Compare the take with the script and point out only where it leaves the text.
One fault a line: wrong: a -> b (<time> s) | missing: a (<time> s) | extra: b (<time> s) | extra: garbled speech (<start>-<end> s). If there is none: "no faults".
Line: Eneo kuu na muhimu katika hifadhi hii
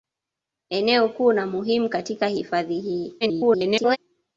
extra: garbled speech (3.2-4.0 s)